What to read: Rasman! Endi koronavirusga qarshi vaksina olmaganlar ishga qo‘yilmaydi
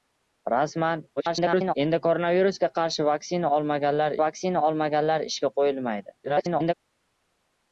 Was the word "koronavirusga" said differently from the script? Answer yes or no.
no